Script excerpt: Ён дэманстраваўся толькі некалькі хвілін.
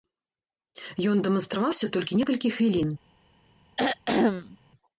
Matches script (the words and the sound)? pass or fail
fail